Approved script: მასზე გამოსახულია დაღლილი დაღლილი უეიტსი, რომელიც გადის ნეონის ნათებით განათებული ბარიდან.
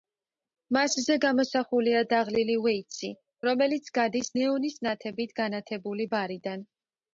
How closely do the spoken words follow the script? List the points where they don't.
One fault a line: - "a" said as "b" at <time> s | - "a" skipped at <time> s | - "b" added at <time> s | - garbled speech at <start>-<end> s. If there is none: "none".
- "დაღლილი" skipped at 2.5 s